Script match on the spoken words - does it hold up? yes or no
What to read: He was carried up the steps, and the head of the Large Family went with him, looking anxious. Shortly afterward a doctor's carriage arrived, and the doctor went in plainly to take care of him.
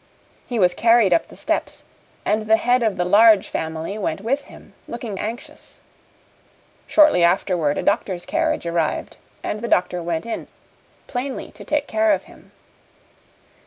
yes